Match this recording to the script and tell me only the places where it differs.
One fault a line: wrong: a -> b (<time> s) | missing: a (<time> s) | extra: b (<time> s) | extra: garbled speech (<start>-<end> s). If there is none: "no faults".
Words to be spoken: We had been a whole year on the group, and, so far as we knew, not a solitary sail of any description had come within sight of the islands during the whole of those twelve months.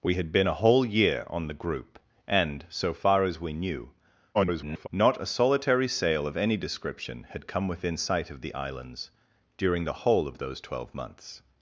extra: garbled speech (4.3-4.9 s)